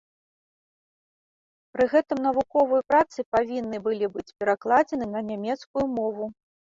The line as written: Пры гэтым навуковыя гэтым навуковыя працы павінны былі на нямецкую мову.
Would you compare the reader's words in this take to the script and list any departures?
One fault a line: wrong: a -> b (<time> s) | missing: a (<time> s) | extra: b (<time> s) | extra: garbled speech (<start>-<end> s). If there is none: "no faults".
missing: гэтым навуковыя (2.9 s)
extra: быць перакладзены (4.2 s)